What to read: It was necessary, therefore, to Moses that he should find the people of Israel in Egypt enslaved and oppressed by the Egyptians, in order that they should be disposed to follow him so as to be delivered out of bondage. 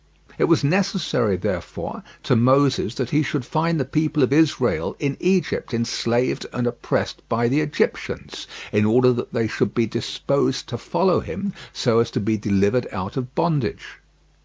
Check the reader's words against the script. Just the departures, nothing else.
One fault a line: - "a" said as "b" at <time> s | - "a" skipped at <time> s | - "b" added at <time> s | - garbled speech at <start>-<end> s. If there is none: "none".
none